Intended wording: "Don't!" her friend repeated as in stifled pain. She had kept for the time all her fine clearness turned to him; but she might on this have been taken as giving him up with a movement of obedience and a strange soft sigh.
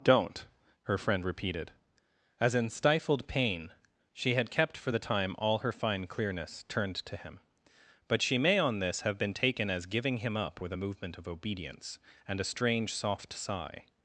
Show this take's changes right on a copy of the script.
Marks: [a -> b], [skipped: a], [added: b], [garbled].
"Don't!" her friend repeated as in stifled pain. She had kept for the time all her fine clearness turned to him; but she [might -> may] on this have been taken as giving him up with a movement of obedience and a strange soft sigh.